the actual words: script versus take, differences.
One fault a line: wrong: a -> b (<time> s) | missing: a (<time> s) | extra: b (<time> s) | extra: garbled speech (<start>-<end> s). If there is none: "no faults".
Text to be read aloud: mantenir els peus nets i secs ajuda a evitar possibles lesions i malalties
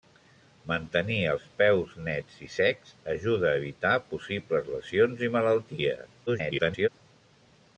extra: garbled speech (6.3-6.9 s)